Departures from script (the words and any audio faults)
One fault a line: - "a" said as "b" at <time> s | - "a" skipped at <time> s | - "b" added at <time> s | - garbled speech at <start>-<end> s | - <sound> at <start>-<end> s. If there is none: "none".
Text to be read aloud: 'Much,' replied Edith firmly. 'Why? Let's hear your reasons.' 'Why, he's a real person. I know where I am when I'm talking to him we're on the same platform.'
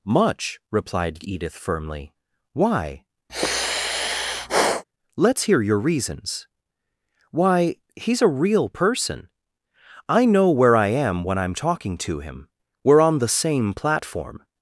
- sigh at 3.3-4.8 s